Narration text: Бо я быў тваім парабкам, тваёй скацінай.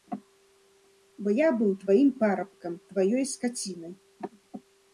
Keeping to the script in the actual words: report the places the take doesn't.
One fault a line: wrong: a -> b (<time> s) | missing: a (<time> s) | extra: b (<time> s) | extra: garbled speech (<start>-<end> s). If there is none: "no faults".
no faults